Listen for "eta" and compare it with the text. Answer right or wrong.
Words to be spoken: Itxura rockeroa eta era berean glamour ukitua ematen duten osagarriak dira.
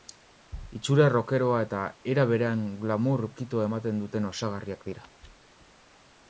right